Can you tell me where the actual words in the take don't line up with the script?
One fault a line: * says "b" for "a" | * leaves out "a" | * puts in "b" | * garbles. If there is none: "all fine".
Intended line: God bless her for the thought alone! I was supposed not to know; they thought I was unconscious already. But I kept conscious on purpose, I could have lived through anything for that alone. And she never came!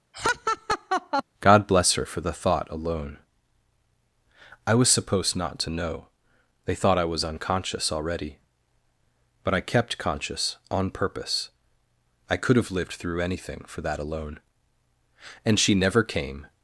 all fine